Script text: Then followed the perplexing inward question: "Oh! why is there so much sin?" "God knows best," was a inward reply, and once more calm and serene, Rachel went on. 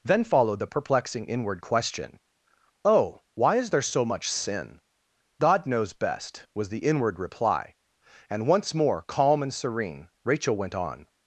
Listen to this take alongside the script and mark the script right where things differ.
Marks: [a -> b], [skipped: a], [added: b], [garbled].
Then followed the perplexing inward question: "Oh! why is there so much sin?" "God knows best," was [a -> the] inward reply, and once more calm and serene, Rachel went on.